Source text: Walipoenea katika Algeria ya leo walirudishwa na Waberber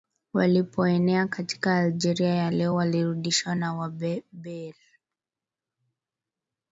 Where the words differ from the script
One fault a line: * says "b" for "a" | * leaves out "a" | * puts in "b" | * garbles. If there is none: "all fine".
all fine